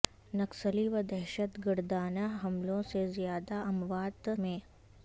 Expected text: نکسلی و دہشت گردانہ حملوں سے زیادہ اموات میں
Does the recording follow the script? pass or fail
pass